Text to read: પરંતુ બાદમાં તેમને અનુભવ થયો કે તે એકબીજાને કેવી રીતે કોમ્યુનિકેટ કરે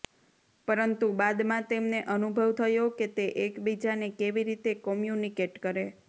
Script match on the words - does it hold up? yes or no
yes